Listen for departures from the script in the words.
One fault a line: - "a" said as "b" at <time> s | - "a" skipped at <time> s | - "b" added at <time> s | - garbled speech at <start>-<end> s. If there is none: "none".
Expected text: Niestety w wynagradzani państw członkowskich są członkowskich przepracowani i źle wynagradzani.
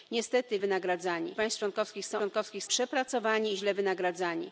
none